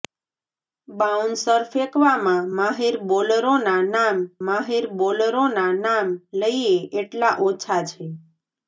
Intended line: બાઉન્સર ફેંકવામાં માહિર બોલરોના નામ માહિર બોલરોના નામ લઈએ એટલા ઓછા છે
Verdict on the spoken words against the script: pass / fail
pass